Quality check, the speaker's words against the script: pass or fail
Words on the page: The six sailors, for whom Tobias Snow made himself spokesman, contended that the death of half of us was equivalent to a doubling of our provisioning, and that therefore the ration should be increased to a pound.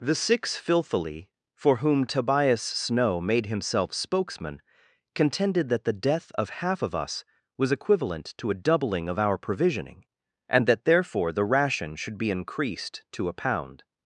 fail